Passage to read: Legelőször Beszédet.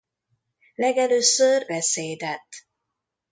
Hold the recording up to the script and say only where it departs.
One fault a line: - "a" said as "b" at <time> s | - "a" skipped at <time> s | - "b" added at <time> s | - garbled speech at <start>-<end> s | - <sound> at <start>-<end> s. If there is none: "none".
none